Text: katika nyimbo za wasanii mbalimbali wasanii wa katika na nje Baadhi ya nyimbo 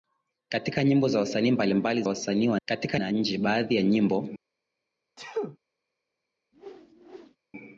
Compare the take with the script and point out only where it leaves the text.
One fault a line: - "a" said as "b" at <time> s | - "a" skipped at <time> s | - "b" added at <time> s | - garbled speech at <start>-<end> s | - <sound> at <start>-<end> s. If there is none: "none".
- sneeze at 5.2-5.6 s
- whoosh at 6.5-7.4 s